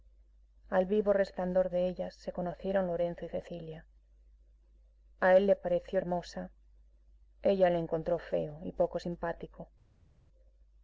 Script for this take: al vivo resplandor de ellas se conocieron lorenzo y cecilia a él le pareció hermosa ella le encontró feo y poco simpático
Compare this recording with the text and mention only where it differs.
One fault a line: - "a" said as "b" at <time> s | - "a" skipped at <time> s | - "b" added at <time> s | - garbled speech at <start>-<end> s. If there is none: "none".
none